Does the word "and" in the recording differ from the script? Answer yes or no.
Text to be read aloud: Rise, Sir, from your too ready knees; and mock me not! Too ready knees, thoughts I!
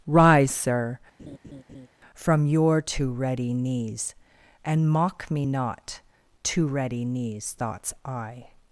no